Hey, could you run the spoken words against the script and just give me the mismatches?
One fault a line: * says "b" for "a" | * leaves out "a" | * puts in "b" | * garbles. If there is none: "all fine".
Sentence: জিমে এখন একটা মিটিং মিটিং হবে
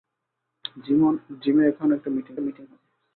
all fine